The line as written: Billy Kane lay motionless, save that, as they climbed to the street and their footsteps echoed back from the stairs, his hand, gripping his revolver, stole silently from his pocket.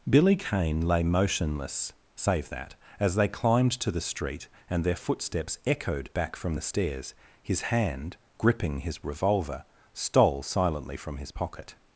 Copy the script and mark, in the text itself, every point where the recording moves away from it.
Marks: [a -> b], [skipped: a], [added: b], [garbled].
Billy Kane lay motionless, save that, as they climbed to the street and their footsteps echoed back from the stairs, his hand, gripping his revolver, stole silently from his pocket.